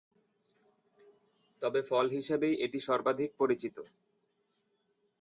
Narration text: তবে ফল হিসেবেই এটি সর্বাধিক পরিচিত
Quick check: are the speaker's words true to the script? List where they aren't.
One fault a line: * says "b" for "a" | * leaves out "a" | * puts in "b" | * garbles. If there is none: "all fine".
all fine